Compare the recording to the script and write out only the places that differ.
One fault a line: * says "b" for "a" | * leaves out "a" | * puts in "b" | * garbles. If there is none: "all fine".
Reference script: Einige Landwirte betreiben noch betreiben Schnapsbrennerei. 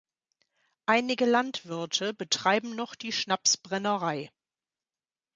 * says "die" for "betreiben"